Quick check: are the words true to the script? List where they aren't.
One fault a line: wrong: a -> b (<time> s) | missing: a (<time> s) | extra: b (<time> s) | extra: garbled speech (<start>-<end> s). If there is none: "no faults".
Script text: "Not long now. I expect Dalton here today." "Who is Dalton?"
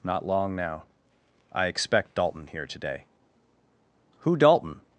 missing: is (4.4 s)